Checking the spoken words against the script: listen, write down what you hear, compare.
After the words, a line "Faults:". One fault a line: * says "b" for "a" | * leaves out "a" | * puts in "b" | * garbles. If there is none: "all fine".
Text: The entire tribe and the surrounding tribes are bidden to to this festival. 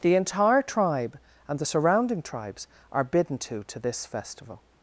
The entire tribe and the surrounding tribes are bidden to to this festival.
Faults:
all fine